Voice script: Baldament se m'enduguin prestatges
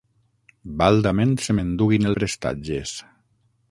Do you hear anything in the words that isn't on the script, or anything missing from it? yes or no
no